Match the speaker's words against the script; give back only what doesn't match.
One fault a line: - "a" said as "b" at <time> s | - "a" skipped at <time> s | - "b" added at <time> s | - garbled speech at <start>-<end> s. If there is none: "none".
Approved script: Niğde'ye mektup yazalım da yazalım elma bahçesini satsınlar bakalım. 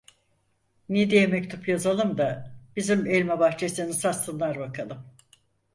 - "yazalım" said as "bizim" at 2.8 s